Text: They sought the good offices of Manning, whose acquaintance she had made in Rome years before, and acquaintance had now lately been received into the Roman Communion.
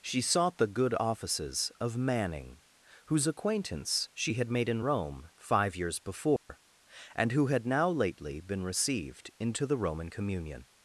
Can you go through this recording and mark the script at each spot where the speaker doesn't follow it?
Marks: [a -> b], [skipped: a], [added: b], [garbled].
[They -> She] sought the good offices of Manning, whose acquaintance she had made in Rome [added: five] years before, and [acquaintance -> who] had now lately been received into the Roman Communion.